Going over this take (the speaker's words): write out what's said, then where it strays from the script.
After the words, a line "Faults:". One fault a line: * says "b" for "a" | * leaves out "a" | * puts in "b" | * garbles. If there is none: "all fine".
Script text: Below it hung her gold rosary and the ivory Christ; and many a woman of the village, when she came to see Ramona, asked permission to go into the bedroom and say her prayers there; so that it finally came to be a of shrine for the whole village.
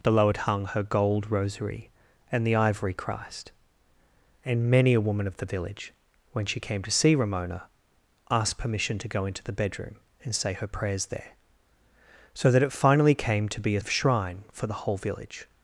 Below it hung her gold rosary and the ivory Christ; and many a woman of the village, when she came to see Ramona, asked permission to go into the bedroom and say her prayers there; so that it finally came to be a of shrine for the whole village.
Faults:
all fine